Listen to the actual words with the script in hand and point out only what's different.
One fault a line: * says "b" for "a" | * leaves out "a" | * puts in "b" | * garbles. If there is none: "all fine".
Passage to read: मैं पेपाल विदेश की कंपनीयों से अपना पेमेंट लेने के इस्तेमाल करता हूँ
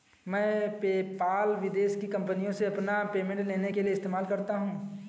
* puts in "लिए"